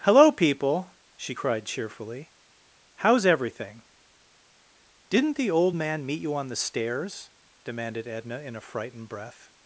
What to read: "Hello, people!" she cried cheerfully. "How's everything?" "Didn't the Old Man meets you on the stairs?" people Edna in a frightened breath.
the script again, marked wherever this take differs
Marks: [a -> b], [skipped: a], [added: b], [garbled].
"Hello, people!" she cried cheerfully. "How's everything?" "Didn't the Old Man [meets -> meet] you on the stairs?" [people -> demanded] Edna in a frightened breath.